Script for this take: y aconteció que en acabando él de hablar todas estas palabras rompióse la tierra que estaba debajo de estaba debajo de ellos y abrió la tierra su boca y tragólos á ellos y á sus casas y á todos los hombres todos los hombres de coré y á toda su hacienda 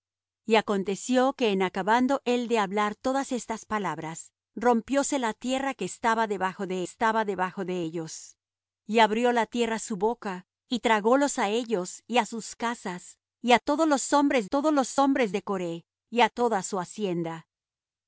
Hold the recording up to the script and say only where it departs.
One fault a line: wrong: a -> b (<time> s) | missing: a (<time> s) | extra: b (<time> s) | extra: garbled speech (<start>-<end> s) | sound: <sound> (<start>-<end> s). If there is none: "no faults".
no faults